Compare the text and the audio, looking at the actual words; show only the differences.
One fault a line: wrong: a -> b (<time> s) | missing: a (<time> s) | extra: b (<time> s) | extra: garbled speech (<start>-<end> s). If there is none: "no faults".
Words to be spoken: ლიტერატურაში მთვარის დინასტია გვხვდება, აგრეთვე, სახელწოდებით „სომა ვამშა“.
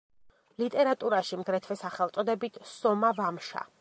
missing: მთვარის დინასტია გვხვდება (1.4 s)